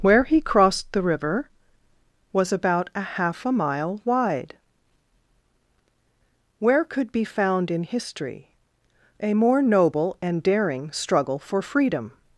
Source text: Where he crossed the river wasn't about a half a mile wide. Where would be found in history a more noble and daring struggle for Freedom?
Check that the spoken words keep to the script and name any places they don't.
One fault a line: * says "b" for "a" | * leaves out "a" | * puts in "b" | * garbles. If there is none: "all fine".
* says "was" for "wasn't"
* says "could" for "would"